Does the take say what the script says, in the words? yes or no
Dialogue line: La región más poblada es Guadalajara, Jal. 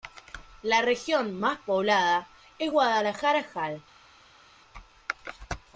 yes